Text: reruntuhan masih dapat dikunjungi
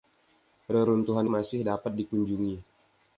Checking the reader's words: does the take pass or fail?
pass